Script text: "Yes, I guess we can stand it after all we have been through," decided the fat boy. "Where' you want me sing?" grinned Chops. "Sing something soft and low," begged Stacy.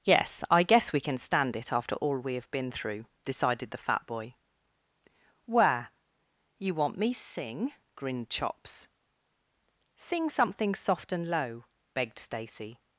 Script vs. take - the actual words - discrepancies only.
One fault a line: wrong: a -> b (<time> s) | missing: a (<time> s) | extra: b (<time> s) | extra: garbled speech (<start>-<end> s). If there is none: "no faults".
no faults